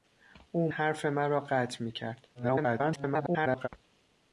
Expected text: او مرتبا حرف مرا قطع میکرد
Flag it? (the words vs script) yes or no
yes